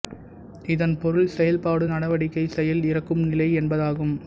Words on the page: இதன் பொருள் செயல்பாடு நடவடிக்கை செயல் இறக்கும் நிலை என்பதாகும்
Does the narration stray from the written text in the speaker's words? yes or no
no